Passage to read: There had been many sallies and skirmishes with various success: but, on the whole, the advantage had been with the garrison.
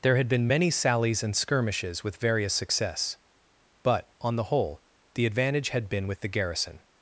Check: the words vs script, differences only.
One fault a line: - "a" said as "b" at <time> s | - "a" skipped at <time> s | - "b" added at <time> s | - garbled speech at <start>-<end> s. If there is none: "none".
none